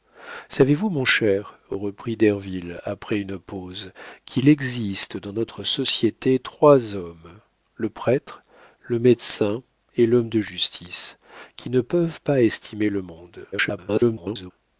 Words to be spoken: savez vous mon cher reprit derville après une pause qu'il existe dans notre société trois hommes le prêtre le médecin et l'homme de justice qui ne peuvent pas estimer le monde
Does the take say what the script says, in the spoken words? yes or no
no